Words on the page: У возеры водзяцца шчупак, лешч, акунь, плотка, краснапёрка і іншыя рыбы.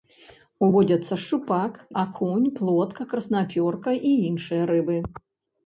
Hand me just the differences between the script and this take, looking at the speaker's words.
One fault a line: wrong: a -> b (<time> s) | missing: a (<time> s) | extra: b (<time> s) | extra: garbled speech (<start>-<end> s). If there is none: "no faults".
missing: возеры (0.7 s)
missing: лешч (1.7 s)